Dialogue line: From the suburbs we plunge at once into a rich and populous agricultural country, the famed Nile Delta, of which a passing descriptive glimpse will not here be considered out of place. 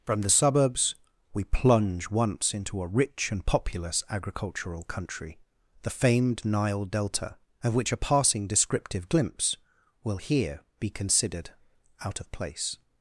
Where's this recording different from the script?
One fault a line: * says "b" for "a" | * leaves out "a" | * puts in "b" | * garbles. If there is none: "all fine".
* leaves out "at"
* leaves out "not"